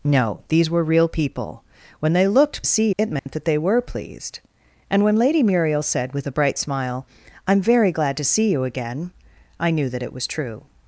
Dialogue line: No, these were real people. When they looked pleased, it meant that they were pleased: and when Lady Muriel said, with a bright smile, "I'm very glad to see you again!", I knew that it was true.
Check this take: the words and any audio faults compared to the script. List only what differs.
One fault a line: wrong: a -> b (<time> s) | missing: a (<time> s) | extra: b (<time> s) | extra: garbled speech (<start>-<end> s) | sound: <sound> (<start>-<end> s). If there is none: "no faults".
wrong: pleased -> see (2.6 s)
sound: dropout (3.2-3.3 s)